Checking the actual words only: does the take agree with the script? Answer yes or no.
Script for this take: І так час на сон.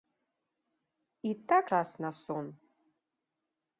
yes